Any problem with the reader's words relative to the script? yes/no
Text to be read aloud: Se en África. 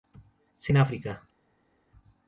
no